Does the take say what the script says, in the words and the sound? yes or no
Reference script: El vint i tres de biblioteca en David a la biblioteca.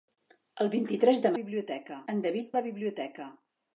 yes